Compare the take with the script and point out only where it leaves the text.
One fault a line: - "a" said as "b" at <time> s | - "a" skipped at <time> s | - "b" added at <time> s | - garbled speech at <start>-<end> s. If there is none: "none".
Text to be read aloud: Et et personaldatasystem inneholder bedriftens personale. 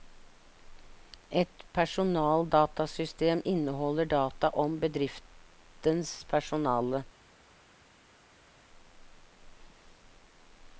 - "et" skipped at 1.6 s
- "data om" added at 4.0 s